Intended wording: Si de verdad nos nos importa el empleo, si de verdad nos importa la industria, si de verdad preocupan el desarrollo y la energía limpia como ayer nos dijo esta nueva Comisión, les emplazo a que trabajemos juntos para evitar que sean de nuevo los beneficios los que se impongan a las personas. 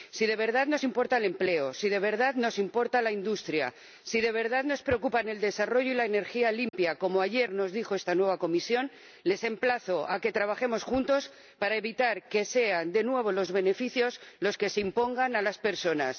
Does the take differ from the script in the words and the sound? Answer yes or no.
yes